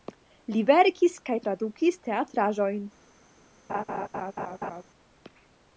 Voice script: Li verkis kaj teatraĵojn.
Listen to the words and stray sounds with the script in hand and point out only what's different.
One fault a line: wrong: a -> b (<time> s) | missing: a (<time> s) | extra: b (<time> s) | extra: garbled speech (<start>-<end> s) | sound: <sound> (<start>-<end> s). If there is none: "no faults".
extra: tradukis (1.4 s)
sound: laugh (3.7-4.8 s)